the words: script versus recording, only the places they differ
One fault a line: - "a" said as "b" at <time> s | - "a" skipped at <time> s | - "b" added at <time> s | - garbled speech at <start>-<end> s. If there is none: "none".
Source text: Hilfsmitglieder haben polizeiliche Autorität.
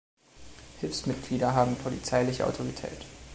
none